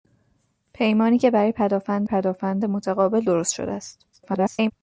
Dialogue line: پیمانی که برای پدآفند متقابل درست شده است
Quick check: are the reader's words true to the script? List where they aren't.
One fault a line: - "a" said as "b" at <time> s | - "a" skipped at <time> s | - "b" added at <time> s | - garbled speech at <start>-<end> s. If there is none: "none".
- "پدآفند" added at 2.0 s
- garbled speech at 4.1-4.7 s